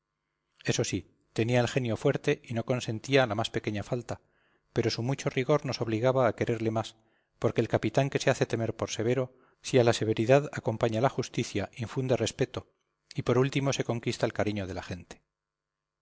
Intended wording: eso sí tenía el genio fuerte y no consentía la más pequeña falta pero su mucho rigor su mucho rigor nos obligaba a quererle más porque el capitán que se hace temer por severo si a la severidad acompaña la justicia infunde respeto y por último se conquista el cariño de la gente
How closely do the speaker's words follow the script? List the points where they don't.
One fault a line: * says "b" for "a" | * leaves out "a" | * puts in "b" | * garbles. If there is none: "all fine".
* leaves out "su mucho rigor"